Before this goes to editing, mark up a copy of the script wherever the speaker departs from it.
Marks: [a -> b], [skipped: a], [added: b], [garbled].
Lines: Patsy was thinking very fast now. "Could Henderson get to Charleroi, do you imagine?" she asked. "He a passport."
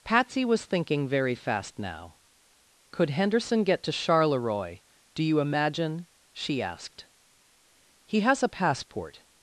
Patsy was thinking very fast now. "Could Henderson get to Charleroi, do you imagine?" she asked. "He [added: has] a passport."